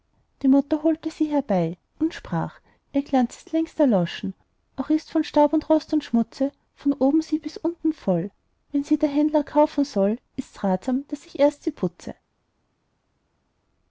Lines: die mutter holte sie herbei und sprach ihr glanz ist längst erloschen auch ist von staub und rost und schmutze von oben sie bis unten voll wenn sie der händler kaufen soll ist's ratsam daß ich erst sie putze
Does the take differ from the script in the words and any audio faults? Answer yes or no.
no